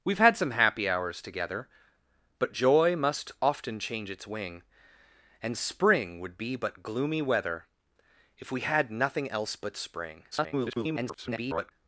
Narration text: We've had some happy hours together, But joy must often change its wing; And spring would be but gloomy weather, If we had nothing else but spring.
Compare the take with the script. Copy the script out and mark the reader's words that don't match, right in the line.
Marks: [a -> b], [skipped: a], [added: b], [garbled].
We've had some happy hours together, But joy must often change its wing; And spring would be but gloomy weather, If we had nothing else but spring. [garbled]